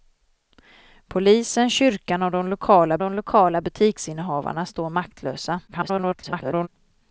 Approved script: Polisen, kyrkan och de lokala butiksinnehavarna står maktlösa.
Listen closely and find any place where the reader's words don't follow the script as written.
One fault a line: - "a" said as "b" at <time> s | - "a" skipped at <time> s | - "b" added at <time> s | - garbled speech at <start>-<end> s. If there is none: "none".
- "de lokala" added at 3.0 s
- garbled speech at 5.7-6.7 s